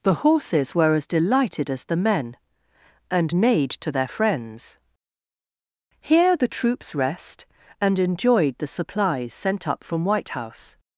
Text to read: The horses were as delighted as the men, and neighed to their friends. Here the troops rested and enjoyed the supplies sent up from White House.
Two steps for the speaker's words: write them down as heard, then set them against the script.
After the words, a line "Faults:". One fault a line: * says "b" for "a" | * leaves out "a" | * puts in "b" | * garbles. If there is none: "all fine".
The horses were as delighted as the men, and neighed to their friends. Here the troops rest and enjoyed the supplies sent up from White House.
Faults:
* says "rest" for "rested"